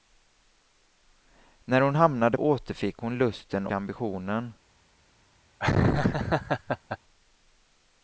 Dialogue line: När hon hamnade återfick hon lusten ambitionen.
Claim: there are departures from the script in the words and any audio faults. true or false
true